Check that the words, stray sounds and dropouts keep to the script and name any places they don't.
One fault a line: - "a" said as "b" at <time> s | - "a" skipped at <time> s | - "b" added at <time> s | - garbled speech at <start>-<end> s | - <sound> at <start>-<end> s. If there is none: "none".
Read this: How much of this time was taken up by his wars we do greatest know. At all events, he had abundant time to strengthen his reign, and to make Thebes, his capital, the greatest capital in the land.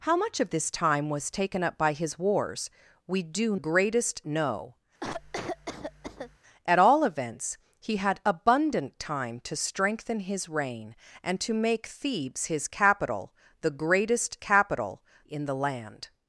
- cough at 5.0-6.4 s